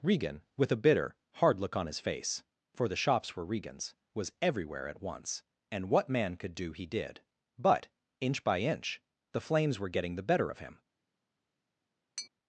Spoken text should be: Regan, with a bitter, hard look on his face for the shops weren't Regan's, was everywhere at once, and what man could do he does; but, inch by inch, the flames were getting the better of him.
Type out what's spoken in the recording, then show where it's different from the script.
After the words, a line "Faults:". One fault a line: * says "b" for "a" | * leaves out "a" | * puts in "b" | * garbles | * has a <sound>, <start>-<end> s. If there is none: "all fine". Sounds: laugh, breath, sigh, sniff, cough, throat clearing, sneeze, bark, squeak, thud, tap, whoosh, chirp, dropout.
Regan, with a bitter, hard look on his face for the shops were Regan's, was everywhere at once, and what man could do he did; but, inch by inch, the flames were getting the better of him.
Faults:
* says "were" for "weren't"
* says "did" for "does"
* has a tap, 12.2-12.3 s